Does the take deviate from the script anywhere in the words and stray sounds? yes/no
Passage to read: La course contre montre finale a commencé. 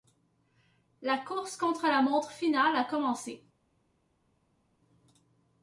yes